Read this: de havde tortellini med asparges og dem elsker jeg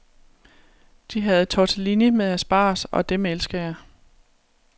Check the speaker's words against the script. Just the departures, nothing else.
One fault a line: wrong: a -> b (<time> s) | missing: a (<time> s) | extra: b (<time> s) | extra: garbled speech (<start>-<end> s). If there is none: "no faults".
no faults